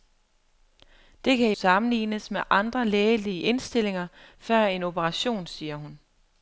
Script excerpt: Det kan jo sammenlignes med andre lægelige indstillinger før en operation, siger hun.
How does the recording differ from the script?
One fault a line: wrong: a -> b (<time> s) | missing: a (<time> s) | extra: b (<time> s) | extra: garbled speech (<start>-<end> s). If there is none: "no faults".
missing: jo (1.5 s)